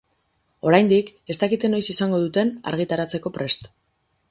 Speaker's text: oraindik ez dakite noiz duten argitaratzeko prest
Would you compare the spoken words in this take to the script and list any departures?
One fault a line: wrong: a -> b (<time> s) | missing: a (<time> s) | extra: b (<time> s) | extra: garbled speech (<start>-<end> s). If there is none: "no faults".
extra: izango (2.0 s)